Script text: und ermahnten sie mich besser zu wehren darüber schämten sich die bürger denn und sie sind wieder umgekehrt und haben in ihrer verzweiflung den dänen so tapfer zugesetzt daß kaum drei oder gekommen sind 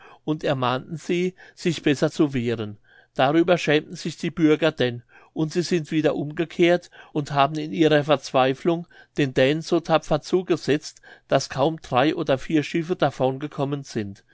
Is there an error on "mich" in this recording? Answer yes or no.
yes